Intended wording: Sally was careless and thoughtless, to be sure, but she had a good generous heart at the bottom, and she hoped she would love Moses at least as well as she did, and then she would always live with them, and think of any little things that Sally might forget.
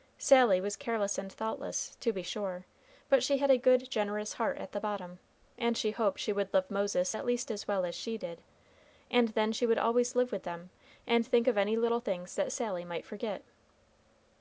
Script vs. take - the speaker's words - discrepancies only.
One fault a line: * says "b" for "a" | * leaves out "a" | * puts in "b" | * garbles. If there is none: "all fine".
all fine